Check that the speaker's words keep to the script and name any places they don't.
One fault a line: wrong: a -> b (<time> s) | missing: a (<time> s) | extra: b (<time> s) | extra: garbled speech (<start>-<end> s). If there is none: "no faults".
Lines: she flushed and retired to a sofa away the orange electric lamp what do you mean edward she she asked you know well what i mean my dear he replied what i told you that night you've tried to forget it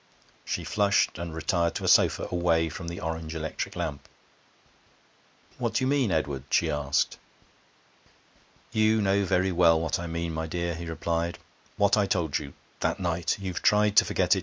extra: from (2.7 s)
missing: she (6.7 s)
extra: very (9.2 s)